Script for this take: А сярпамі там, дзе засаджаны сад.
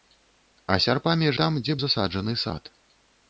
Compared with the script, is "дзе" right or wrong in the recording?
right